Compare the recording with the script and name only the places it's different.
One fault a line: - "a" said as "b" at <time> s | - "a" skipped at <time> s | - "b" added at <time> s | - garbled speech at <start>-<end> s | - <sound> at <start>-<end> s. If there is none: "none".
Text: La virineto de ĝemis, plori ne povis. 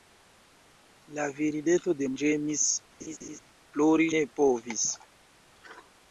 - laugh at 3.0-3.4 s